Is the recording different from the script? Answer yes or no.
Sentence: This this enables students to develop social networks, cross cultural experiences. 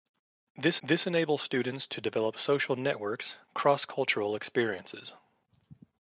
no